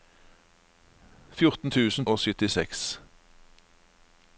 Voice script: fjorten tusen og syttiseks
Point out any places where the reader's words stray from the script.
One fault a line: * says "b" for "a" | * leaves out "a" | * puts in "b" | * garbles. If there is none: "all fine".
all fine